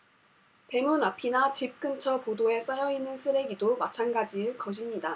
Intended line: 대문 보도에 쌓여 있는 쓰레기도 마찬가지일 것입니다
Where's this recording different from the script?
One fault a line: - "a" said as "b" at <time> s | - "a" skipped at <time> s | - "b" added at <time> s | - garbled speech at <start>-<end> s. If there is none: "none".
- "앞이나 집 근처" added at 1.0 s